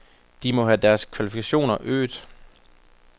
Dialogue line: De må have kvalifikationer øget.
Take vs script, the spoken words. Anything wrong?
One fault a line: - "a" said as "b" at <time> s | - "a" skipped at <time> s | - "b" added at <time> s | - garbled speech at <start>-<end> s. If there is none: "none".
- "deres" added at 0.8 s